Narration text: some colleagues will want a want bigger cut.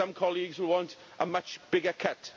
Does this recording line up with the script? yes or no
no